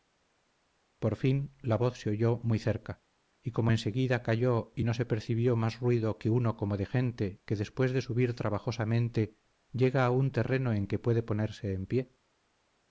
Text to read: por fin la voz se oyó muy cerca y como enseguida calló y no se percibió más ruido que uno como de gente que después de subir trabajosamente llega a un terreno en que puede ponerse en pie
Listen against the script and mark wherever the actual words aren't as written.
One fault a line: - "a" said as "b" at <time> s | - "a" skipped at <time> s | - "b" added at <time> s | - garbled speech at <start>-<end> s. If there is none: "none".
none